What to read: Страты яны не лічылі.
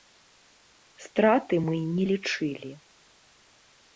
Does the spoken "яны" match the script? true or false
false